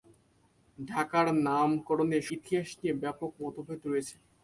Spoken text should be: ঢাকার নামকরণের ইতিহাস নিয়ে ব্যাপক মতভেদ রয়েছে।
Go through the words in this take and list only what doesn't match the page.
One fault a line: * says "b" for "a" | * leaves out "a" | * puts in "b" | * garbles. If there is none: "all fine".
all fine